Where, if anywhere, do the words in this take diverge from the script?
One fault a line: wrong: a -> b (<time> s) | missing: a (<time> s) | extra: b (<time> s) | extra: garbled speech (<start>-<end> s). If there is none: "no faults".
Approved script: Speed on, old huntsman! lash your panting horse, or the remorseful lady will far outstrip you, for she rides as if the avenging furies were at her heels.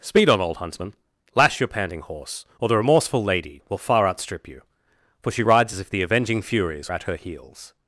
missing: were (6.9 s)